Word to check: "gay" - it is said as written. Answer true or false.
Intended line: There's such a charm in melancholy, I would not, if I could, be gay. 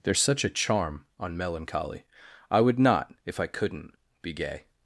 true